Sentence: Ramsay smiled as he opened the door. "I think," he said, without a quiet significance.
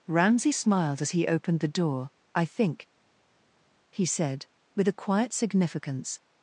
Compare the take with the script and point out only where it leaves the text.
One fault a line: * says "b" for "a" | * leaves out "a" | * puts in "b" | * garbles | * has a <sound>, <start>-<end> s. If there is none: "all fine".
* says "with" for "without"